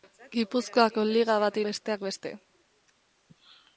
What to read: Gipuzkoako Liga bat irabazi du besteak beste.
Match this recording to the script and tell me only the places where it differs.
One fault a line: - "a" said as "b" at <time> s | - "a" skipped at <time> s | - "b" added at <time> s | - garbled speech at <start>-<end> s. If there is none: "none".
- "irabazi du" skipped at 1.6 s